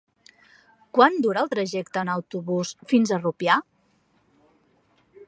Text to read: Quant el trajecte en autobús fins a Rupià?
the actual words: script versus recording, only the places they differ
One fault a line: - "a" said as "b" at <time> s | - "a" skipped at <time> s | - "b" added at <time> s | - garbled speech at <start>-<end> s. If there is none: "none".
- "dura" added at 1.2 s